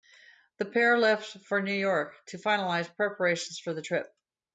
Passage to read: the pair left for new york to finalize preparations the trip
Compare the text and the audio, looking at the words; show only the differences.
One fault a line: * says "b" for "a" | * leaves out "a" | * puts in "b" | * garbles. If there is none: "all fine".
* puts in "for"